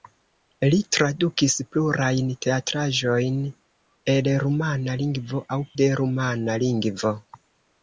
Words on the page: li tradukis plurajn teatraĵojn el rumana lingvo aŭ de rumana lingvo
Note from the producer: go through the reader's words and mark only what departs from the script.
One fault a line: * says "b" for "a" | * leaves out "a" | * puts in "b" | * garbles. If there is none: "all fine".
all fine